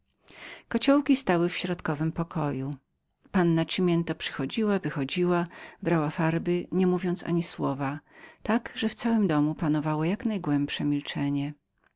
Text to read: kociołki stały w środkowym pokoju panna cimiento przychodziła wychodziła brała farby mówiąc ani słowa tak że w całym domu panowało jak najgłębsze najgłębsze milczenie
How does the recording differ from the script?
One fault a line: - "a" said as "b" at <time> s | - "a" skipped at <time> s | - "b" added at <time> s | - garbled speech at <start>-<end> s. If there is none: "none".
- "nie" added at 6.7 s
- "najgłębsze" skipped at 10.8 s